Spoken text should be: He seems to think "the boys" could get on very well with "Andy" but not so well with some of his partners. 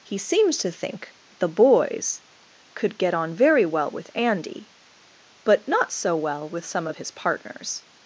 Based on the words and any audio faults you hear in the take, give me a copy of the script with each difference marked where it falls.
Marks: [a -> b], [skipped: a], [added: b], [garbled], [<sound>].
He seems to think "the boys" could get on very well with "Andy" but not so well with some of his partners.